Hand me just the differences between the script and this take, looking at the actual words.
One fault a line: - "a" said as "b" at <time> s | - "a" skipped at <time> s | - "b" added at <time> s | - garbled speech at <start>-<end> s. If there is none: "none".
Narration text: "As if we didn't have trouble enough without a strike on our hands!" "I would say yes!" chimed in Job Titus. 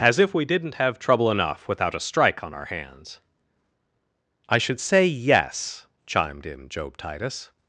- "would" said as "should" at 4.6 s